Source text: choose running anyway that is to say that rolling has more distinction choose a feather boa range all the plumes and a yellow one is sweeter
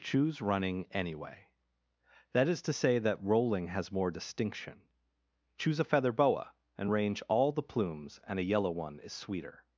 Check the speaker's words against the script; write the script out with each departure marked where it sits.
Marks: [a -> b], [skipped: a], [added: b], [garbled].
choose running anyway that is to say that rolling has more distinction choose a feather boa [added: and] range all the plumes and a yellow one is sweeter